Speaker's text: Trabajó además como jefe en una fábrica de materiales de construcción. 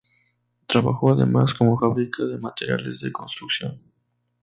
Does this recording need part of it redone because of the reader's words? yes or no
yes